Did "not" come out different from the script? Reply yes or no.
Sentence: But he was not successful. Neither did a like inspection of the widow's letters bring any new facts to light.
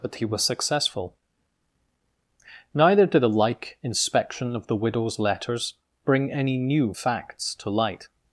yes